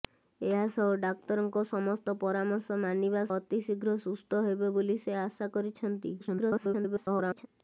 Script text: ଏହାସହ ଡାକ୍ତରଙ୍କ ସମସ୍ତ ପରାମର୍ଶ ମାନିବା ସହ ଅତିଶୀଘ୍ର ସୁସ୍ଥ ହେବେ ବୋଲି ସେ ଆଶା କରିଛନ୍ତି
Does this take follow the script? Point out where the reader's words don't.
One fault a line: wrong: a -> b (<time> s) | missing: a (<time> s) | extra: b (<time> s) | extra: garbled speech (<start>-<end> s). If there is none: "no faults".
missing: ସହ (3.2 s)
extra: garbled speech (6.2-7.5 s)